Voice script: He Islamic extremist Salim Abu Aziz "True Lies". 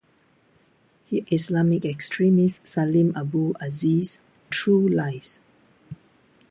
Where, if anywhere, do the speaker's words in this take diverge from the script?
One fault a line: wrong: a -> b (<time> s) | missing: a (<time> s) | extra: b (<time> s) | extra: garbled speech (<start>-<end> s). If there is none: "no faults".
no faults